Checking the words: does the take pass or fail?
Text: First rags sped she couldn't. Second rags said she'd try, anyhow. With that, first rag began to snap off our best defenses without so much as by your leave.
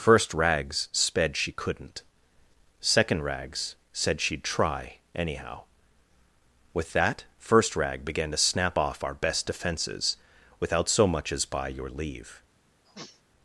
pass